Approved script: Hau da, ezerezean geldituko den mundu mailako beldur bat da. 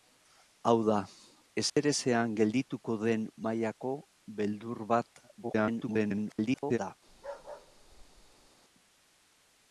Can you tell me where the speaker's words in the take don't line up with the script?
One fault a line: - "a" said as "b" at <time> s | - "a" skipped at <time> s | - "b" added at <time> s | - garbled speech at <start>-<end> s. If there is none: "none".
- "mundu" skipped at 3.3 s
- garbled speech at 5.4-6.8 s